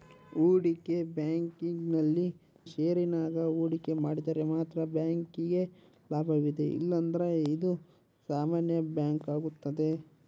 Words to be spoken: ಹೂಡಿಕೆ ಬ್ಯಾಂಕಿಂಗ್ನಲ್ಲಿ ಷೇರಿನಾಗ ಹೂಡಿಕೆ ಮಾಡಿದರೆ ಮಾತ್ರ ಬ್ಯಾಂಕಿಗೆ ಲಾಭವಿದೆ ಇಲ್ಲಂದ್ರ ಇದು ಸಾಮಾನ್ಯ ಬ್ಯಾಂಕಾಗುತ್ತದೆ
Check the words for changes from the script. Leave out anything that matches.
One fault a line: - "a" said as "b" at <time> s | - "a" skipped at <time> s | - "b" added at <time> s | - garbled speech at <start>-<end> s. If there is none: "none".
none